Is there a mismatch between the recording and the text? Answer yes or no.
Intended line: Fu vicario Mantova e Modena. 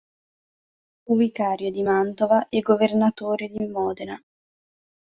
yes